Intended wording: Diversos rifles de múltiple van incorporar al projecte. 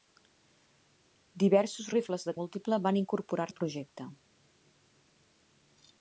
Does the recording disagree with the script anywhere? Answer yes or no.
no